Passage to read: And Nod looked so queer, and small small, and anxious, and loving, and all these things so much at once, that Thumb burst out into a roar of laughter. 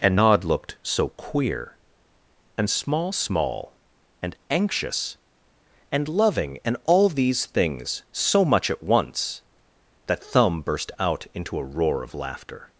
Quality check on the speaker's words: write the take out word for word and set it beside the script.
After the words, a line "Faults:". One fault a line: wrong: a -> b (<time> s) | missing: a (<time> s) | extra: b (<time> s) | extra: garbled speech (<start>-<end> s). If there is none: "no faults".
And Nod looked so queer, and small small, and anxious, and loving, and all these things so much at once, that Thumb burst out into a roar of laughter.
Faults:
no faults